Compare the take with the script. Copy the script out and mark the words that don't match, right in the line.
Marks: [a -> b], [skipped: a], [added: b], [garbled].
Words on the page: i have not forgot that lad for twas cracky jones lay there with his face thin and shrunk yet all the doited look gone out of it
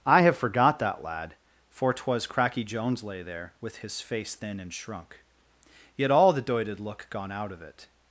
i have [skipped: not] forgot that lad for twas cracky jones lay there with his face thin and shrunk yet all the doited look gone out of it